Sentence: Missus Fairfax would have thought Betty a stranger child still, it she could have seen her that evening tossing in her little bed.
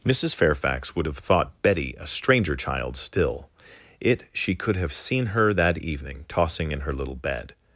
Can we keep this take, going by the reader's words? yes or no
yes